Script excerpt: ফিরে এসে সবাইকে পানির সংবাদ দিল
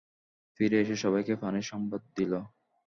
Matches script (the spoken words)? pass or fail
pass